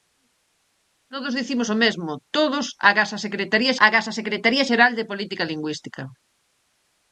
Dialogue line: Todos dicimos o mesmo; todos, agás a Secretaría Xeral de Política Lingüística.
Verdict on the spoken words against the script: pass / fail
fail